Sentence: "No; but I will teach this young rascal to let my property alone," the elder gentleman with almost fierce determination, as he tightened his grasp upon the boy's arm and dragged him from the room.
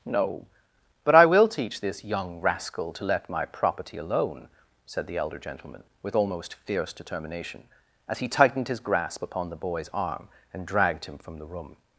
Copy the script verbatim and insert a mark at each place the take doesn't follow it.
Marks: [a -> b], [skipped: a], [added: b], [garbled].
"No; but I will teach this young rascal to let my property alone," [added: said] the elder gentleman with almost fierce determination, as he tightened his grasp upon the boy's arm and dragged him from the room.